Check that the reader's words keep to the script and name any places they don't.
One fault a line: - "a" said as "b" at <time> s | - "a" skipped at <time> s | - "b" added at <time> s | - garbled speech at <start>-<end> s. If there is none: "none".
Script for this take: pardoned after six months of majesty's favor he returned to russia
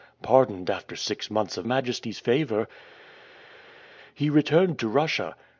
none